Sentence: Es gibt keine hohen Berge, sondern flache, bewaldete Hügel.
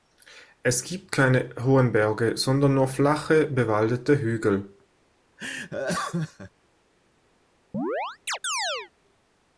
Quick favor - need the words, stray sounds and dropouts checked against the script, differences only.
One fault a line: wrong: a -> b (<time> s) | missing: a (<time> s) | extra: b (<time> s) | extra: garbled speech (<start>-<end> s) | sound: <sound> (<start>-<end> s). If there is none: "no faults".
extra: nur (2.7 s)
sound: laugh (5.4-6.5 s)
sound: chirp (7.7-8.9 s)